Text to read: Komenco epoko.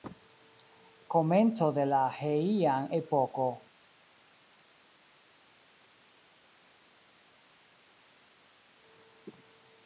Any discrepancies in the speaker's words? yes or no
yes